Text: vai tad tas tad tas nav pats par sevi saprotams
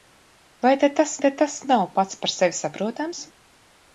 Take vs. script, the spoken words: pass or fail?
pass